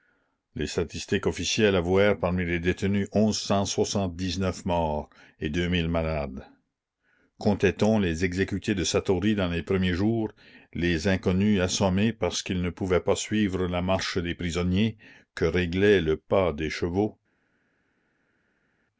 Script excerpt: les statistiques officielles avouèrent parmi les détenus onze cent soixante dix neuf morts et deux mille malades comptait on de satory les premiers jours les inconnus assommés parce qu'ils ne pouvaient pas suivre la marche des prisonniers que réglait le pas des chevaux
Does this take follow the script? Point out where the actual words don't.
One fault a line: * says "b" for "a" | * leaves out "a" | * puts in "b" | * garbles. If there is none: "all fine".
* puts in "les exécutés"
* puts in "dans"